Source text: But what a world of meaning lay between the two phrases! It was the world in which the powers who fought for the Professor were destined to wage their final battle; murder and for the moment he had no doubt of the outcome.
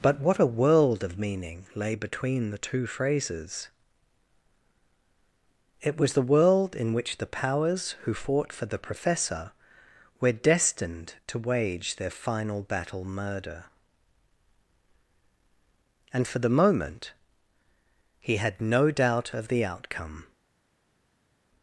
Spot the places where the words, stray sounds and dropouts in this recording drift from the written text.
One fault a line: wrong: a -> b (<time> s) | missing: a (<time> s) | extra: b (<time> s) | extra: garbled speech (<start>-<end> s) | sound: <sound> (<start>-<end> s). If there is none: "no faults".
no faults